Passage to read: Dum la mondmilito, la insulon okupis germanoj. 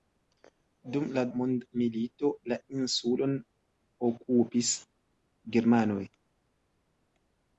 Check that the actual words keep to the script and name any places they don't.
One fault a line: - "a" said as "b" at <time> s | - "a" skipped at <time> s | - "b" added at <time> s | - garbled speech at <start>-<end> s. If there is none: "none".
none